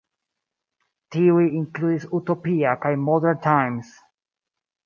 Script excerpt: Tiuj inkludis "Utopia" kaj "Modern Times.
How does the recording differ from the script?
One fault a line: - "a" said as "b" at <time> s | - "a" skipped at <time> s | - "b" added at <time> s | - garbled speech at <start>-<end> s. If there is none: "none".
none